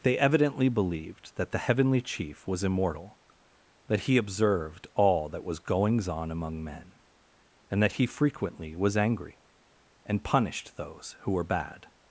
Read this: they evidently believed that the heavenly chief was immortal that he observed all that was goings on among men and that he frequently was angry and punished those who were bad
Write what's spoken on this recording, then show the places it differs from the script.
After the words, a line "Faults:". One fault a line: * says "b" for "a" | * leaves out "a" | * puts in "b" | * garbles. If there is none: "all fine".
they evidently believed that the heavenly chief was immortal that he observed all that was goings on among men and that he frequently was angry and punished those who were bad
Faults:
all fine